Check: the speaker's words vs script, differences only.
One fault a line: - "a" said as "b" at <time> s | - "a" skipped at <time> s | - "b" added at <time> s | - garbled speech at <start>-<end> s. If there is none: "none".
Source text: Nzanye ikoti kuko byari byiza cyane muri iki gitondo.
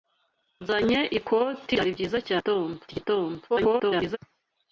- "kuko" skipped at 1.7 s
- "muri" said as "gitondo" at 2.4 s
- garbled speech at 3.5-4.2 s